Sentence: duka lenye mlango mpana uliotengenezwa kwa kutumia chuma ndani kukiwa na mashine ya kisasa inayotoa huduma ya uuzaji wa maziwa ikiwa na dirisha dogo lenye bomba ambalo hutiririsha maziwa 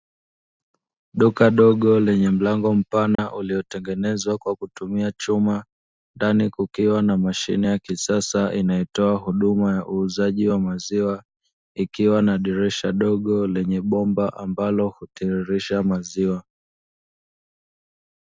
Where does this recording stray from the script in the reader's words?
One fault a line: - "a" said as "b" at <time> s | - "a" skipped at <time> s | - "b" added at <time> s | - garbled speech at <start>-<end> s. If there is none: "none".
- "dogo" added at 1.6 s